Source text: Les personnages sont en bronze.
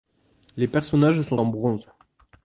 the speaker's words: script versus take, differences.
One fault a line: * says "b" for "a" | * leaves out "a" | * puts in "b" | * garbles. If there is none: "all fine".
all fine